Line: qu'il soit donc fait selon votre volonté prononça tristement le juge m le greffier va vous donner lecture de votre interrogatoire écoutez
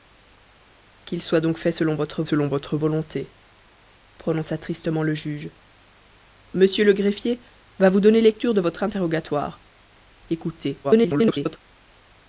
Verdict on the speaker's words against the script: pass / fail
fail